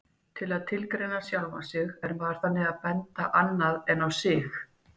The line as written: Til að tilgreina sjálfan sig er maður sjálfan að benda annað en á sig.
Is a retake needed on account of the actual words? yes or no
yes